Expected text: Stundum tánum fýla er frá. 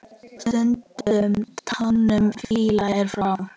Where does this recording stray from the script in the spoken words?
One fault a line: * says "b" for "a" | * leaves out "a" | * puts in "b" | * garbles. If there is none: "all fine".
all fine